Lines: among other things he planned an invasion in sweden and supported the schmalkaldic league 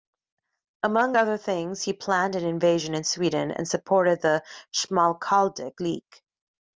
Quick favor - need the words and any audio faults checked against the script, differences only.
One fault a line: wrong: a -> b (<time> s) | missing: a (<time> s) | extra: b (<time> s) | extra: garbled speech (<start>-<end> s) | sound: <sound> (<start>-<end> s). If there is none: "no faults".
no faults